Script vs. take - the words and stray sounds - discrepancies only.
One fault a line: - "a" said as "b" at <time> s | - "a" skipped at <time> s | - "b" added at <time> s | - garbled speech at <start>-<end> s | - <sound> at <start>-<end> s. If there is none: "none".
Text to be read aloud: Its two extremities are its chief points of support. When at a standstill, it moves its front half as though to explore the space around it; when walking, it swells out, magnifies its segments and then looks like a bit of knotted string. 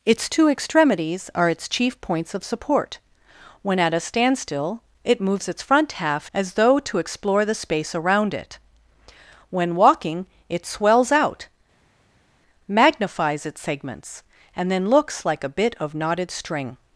none